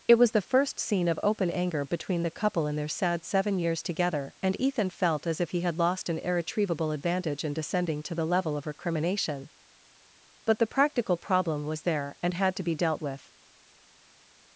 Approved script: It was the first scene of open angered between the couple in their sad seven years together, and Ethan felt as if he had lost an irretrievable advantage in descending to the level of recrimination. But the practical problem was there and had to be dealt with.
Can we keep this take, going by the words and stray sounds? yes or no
no